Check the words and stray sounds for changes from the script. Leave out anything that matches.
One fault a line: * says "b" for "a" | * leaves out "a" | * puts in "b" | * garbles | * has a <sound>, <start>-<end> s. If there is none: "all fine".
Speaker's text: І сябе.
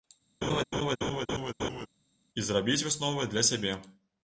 * has a laugh, 0.4-1.9 s
* puts in "зрабіць высновы для"